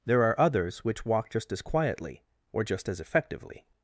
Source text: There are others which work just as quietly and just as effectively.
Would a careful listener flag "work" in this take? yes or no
yes